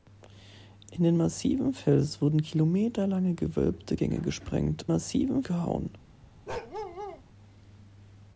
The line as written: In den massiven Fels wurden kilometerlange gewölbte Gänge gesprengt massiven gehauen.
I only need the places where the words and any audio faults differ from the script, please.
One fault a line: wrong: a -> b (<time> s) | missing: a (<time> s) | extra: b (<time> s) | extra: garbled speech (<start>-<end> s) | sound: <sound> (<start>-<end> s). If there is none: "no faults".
sound: bark (6.5-7.2 s)